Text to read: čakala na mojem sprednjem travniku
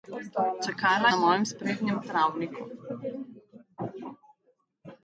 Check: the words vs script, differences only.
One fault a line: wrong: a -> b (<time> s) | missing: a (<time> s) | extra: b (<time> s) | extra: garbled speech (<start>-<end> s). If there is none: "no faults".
no faults